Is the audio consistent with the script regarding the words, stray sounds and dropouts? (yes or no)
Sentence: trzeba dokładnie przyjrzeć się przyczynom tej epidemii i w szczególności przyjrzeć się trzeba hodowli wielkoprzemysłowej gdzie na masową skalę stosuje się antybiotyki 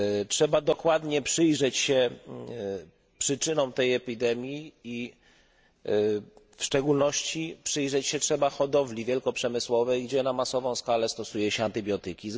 yes